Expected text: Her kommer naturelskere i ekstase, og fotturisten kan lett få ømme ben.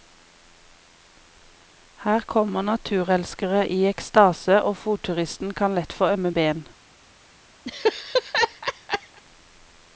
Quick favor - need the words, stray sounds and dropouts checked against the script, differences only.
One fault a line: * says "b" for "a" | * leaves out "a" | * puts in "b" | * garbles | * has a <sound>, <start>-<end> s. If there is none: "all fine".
* has a laugh, 7.7-9.2 s